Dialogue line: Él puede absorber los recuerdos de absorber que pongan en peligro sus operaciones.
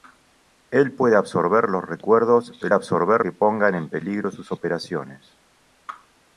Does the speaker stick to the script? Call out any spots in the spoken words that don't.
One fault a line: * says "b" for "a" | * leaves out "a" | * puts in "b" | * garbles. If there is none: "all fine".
all fine